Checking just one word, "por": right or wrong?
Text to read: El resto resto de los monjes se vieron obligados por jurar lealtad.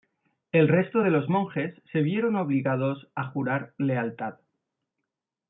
wrong